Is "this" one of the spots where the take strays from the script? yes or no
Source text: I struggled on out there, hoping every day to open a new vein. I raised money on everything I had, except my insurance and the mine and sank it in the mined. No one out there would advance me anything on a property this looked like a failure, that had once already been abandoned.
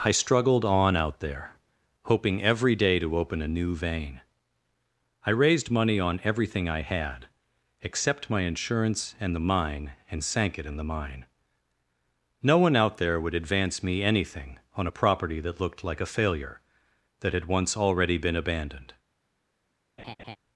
yes